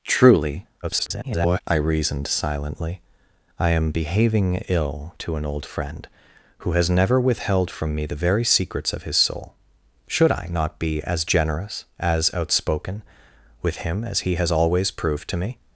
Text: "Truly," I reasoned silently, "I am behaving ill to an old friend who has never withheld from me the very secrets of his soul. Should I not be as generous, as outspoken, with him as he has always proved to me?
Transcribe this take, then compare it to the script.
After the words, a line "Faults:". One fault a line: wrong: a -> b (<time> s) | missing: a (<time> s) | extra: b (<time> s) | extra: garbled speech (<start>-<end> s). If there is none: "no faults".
"Truly," [garbled] I reasoned silently, "I am behaving ill to an old friend who has never withheld from me the very secrets of his soul. Should I not be as generous, as outspoken, with him as he has always proved to me?
Faults:
extra: garbled speech (0.8-1.6 s)